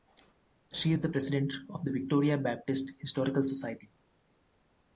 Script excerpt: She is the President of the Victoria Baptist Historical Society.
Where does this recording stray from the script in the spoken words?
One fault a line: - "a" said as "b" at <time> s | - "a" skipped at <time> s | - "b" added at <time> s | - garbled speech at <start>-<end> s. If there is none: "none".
none